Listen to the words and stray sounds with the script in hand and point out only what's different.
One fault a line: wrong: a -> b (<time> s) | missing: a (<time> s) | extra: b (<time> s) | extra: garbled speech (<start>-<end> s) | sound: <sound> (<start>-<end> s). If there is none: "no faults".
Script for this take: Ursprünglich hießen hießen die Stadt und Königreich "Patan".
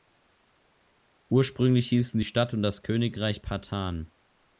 missing: hießen (2.2 s)
extra: das (2.6 s)